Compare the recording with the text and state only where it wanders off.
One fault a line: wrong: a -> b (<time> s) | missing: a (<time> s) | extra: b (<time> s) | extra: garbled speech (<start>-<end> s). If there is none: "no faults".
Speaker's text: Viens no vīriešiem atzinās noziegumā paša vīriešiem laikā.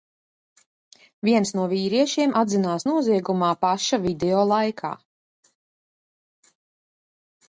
wrong: vīriešiem -> video (4.1 s)